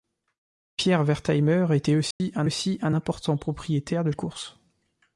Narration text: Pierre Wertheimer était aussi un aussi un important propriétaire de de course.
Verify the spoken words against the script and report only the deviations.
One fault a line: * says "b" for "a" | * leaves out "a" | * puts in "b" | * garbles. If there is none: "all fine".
all fine